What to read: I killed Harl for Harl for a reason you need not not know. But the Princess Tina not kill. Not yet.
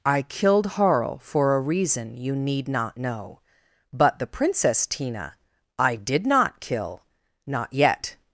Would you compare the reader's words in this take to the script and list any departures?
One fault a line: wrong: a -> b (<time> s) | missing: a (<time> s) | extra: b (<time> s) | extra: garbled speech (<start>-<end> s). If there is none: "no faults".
missing: Harl for (1.6 s)
missing: not (3.0 s)
extra: I did (5.8 s)